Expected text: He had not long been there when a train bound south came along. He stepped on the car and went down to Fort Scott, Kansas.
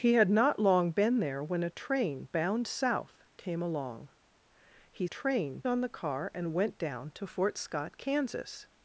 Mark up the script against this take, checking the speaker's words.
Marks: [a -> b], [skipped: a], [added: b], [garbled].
He had not long been there when a train bound south came along. He [stepped -> train] on the car and went down to Fort Scott, Kansas.